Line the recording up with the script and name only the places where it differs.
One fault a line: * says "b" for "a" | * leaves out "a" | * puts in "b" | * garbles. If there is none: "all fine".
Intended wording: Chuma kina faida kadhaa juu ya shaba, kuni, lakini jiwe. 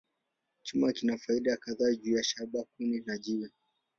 * says "na" for "lakini"